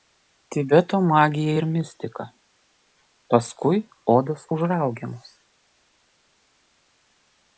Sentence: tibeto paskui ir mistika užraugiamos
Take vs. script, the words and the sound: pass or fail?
fail